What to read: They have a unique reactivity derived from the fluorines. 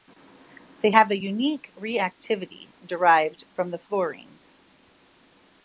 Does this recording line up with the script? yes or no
yes